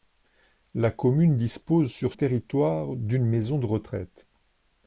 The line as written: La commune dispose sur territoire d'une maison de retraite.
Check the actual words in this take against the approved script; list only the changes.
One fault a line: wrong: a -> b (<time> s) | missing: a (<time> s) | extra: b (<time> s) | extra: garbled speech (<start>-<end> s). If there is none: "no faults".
no faults